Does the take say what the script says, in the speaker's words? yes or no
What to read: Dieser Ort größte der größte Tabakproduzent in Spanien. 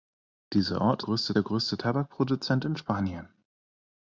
yes